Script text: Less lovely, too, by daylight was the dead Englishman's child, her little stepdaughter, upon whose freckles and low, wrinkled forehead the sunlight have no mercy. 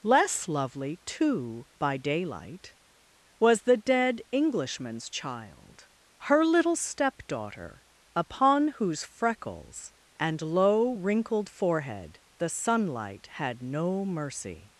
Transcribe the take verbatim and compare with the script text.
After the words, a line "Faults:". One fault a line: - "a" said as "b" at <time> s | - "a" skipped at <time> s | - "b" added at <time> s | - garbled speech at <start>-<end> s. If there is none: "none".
Less lovely, too, by daylight was the dead Englishman's child, her little stepdaughter, upon whose freckles and low, wrinkled forehead the sunlight had no mercy.
Faults:
- "have" said as "had" at 13.3 s